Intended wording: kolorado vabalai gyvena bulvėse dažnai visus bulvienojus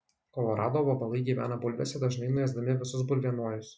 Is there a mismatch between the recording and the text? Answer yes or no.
yes